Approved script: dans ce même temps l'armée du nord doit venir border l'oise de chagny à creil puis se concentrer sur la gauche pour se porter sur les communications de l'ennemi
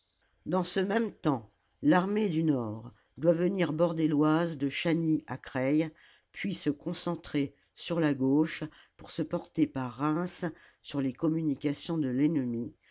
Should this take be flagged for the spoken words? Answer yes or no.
yes